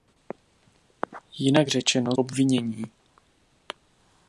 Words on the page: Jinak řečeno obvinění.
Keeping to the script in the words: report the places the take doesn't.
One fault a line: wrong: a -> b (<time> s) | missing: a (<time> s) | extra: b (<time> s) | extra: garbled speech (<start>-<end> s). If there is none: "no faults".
no faults